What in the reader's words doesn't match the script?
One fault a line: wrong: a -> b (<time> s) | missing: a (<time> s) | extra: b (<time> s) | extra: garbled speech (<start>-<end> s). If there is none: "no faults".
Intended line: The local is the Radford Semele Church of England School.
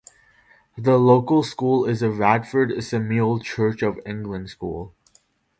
extra: school (1.4 s)